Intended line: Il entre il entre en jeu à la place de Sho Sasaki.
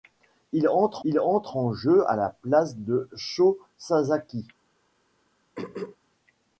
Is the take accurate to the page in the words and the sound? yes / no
no